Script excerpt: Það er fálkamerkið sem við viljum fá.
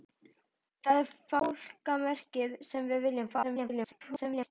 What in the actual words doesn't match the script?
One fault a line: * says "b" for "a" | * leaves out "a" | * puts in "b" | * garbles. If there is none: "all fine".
* garbles